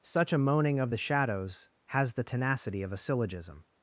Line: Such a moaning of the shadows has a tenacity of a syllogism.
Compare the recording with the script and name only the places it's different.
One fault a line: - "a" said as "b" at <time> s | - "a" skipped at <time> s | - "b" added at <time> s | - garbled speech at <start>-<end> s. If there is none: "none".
- "a" said as "the" at 2.1 s